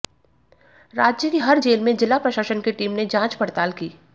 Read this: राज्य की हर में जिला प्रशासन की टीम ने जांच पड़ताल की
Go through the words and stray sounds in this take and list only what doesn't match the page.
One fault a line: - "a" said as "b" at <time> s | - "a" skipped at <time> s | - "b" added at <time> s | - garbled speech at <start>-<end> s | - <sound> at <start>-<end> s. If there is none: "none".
- "जेल" added at 1.6 s